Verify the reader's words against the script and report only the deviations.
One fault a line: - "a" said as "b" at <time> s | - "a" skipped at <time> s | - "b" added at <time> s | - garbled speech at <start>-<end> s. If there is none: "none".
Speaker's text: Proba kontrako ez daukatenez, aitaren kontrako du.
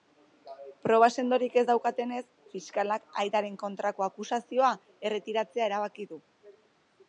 - "kontrako" said as "sendorik" at 1.2 s
- "fiskalak" added at 2.5 s
- "akusazioa erretiratzea erabaki" added at 4.1 s